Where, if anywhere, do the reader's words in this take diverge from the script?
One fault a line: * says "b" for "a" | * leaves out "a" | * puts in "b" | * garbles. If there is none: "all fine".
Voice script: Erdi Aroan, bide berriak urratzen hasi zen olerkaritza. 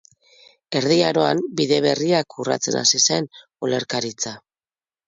all fine